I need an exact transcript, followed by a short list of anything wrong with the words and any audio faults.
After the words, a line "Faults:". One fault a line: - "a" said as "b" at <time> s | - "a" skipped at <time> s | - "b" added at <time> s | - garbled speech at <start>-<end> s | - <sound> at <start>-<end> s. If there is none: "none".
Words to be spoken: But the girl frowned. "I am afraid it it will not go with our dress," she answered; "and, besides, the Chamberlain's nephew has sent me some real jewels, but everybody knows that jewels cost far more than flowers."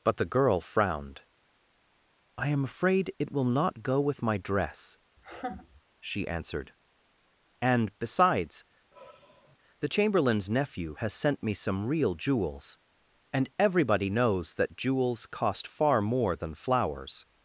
But the girl frowned. "I am afraid it will not go with my dress," she answered; "and, besides, the Chamberlain's nephew has sent me some real jewels, and everybody knows that jewels cost far more than flowers."
Faults:
- "it" skipped at 3.3 s
- "our" said as "my" at 4.2 s
- laugh at 5.2-5.8 s
- sigh at 8.9-9.6 s
- "but" said as "and" at 13.3 s